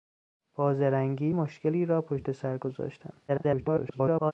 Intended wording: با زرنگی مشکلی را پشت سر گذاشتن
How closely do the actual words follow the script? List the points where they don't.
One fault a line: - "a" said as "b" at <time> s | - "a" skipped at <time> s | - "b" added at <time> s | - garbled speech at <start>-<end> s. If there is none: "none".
- garbled speech at 3.3-4.3 s